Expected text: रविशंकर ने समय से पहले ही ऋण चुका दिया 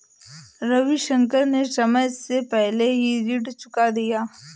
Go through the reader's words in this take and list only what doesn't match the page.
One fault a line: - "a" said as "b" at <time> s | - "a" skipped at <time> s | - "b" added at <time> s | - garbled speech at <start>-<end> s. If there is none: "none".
none